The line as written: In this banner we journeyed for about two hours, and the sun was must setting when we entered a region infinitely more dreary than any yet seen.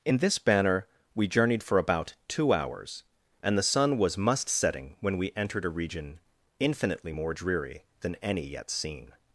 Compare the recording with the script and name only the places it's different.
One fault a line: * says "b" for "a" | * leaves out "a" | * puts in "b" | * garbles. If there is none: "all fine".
all fine